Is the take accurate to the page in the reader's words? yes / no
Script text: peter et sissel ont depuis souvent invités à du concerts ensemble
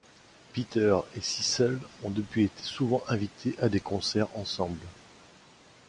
no